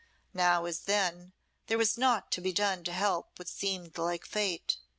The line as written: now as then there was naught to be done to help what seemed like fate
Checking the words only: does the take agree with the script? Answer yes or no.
yes